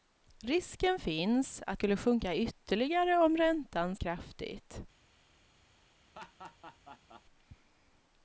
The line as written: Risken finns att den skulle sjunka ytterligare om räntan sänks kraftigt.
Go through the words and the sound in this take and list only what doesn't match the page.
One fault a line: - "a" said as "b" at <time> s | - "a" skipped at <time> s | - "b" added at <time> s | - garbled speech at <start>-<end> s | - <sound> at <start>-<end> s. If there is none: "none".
- "den" skipped at 1.8 s
- "sänks" skipped at 3.9 s
- laugh at 6.1-7.2 s